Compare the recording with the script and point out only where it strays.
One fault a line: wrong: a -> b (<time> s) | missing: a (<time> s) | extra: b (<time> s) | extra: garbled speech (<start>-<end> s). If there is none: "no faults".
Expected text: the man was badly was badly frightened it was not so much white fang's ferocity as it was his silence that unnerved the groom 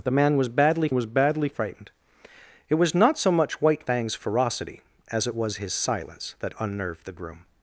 no faults